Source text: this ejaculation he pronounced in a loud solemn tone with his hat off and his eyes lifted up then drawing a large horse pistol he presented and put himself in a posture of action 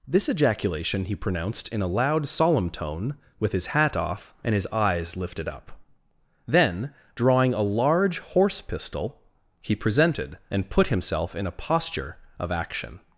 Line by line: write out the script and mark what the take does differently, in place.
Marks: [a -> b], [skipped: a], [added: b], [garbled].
this ejaculation he pronounced in a loud solemn tone with his hat off and his eyes lifted up then drawing a large horse pistol he presented and put himself in a posture of action